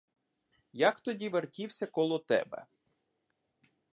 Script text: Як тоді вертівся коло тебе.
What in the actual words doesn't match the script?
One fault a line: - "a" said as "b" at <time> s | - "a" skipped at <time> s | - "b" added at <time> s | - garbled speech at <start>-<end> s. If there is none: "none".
none